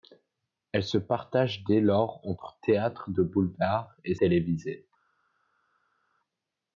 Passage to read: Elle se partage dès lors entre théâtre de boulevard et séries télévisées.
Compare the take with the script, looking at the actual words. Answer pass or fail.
fail